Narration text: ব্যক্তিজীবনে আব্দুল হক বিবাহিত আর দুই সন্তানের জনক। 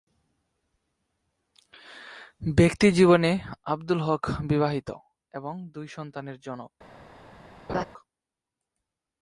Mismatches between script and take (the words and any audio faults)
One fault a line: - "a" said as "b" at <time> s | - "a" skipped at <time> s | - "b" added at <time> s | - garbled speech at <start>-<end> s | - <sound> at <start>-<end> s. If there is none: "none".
- "আর" said as "এবং" at 5.3 s
- laugh at 7.7-7.8 s